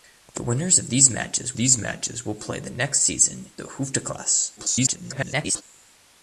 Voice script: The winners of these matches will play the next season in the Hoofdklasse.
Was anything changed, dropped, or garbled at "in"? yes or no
yes